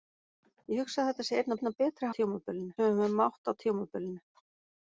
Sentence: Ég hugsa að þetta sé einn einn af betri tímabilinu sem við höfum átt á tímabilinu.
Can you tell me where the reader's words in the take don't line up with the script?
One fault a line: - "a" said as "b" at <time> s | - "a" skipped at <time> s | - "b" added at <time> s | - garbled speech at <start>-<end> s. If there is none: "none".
none